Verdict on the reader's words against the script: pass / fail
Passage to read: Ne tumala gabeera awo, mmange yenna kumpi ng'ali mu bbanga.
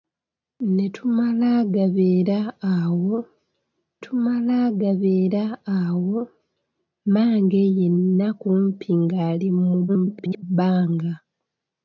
fail